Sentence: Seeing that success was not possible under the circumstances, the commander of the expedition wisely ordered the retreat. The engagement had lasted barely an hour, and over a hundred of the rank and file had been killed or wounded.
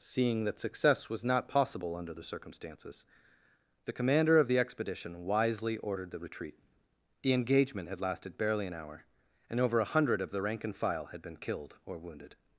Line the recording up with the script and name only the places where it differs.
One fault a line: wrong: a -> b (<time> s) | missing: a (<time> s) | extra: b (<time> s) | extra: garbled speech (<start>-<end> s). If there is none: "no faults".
no faults